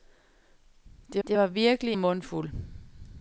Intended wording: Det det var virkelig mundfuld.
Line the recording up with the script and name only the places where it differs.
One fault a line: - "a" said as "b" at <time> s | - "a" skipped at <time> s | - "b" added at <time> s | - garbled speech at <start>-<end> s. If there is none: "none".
none